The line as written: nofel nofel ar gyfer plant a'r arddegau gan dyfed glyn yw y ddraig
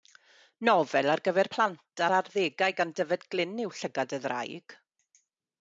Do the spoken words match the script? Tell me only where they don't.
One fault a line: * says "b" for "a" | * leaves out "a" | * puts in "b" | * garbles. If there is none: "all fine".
* leaves out "nofel"
* puts in "llygad"